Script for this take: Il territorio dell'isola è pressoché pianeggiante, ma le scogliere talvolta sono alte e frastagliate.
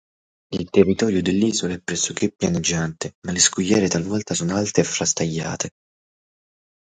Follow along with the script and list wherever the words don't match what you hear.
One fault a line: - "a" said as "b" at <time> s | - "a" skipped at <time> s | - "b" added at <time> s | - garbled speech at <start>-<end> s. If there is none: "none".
none